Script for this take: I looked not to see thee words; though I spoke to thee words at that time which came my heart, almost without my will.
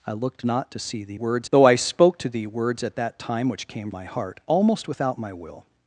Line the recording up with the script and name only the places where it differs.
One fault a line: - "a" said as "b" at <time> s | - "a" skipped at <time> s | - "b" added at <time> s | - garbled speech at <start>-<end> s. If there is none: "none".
none